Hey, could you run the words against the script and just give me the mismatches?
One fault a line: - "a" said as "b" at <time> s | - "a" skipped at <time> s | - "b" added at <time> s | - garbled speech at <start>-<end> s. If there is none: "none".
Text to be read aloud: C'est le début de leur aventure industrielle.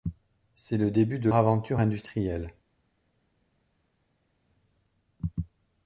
- "leur" skipped at 1.3 s